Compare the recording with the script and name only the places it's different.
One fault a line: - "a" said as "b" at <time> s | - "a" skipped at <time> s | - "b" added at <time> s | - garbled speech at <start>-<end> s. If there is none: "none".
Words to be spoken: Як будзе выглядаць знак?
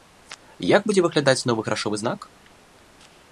- "новы грашовы" added at 1.5 s